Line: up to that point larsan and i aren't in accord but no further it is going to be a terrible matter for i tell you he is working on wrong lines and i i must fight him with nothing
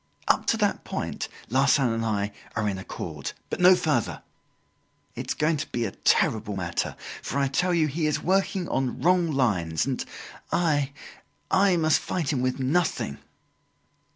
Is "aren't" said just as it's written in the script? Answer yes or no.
no